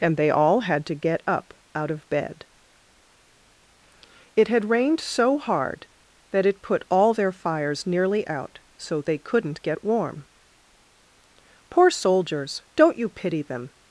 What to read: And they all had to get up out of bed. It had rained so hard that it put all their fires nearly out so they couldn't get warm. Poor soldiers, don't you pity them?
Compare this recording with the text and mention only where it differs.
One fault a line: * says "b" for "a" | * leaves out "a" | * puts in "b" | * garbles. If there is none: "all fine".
all fine